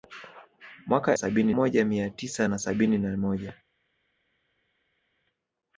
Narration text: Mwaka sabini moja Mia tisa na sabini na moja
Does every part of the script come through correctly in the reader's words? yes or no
yes